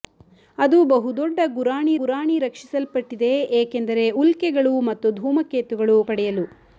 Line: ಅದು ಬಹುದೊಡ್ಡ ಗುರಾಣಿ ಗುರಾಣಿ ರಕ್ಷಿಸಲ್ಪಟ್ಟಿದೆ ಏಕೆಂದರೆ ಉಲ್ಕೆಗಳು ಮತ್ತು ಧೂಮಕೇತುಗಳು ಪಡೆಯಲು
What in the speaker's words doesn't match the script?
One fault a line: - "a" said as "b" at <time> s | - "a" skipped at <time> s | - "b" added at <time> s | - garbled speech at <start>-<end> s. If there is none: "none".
none